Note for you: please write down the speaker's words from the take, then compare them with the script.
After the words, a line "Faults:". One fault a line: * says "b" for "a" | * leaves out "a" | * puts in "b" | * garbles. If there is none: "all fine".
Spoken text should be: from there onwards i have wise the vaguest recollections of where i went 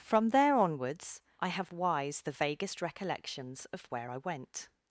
from there onwards i have wise the vaguest recollections of where i went
Faults:
all fine